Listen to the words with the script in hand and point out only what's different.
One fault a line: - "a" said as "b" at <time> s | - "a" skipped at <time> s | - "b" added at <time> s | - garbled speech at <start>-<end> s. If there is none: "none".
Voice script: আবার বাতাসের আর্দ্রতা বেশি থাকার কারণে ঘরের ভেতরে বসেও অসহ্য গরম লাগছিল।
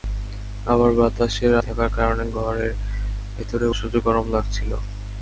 - "আর্দ্রতা বেশি" skipped at 1.5 s
- "বসেও" skipped at 3.7 s